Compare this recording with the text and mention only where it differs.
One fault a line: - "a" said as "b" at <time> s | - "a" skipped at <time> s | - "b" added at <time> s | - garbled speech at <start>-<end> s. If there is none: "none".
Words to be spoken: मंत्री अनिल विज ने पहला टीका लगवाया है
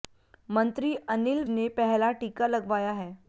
- "विज" skipped at 1.4 s